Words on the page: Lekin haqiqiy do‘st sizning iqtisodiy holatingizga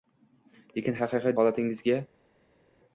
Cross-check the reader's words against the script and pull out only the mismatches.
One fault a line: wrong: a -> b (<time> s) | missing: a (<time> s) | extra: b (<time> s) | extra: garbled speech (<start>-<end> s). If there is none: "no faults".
missing: do‘st sizning iqtisodiy (1.3 s)